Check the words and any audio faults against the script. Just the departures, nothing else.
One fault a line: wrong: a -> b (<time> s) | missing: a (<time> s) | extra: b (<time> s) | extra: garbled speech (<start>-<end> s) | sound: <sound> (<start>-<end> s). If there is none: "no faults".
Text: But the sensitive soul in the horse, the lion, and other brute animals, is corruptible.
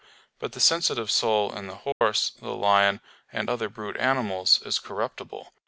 sound: dropout (1.9-2.0 s)